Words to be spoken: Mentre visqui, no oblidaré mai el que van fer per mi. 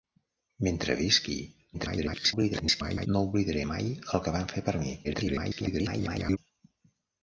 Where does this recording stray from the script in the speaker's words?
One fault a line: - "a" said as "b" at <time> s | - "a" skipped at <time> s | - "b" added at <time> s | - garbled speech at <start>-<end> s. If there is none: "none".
- garbled speech at 1.7-3.1 s
- garbled speech at 5.0-6.4 s